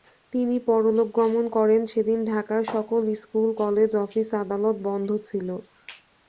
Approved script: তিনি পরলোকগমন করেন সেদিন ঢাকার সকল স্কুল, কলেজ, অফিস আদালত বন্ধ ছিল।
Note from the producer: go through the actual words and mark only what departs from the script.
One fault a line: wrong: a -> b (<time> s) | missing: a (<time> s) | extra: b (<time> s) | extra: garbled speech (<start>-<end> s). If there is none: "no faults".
no faults